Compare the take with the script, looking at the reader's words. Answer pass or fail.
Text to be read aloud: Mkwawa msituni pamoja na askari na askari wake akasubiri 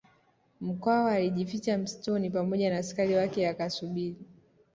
fail